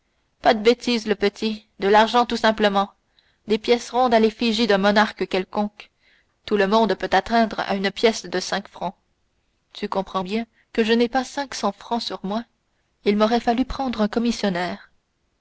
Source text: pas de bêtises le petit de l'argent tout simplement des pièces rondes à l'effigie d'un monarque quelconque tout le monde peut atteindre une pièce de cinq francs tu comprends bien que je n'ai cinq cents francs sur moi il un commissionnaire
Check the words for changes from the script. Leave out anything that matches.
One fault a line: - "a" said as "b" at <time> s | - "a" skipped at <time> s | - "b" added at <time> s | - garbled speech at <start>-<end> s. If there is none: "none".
- "à" added at 7.6 s
- "pas" added at 11.1 s
- "m'aurait fallu prendre" added at 13.2 s